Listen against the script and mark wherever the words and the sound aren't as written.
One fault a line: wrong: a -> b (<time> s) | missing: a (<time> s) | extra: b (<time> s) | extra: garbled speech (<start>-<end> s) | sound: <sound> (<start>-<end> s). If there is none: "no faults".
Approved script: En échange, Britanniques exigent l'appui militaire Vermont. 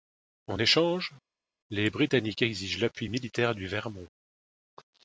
extra: les (1.7 s)
extra: du (3.6 s)